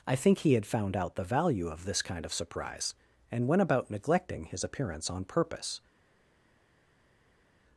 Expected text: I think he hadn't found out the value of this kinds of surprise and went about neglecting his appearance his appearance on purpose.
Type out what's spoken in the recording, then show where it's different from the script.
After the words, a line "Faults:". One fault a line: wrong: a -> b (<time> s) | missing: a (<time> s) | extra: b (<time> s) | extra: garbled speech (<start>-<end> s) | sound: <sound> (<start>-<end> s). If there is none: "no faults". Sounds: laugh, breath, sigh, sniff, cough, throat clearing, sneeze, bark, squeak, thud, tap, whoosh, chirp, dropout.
I think he had found out the value of this kind of surprise and went about neglecting his appearance on purpose.
Faults:
wrong: hadn't -> had (0.5 s)
wrong: kinds -> kind (2.0 s)
missing: his appearance (5.1 s)